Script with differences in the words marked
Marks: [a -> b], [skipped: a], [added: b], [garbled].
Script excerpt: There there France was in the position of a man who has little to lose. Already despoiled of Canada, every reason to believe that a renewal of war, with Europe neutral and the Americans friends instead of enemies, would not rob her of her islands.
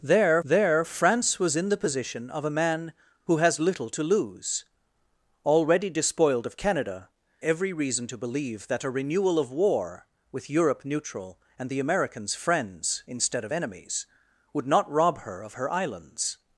There there France was in the position of a man who has little to lose. Already despoiled of Canada, every reason to believe that a renewal of war, with Europe neutral and the Americans friends instead of enemies, would not rob her of her islands.